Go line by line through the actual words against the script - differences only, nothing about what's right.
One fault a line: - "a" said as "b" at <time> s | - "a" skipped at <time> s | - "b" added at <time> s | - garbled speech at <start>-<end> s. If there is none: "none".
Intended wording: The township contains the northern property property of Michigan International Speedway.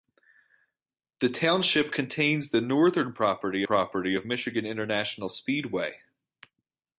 none